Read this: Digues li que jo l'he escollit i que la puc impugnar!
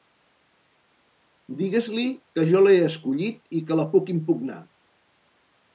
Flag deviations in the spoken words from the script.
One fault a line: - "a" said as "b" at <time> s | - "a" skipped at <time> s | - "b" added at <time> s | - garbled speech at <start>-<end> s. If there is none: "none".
none